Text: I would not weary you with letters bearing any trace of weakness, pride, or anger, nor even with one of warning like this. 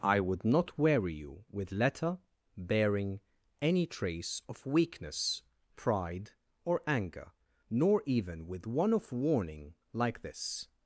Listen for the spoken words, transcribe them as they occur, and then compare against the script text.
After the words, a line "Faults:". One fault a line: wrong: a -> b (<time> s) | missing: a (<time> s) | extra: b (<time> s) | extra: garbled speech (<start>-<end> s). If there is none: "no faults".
I would not weary you with letter bearing any trace of weakness, pride, or anger, nor even with one of warning like this.
Faults:
wrong: letters -> letter (1.7 s)